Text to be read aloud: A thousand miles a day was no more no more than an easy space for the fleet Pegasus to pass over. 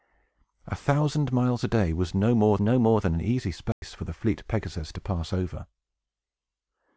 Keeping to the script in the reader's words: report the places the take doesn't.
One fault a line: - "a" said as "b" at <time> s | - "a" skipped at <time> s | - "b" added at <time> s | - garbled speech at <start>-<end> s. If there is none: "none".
none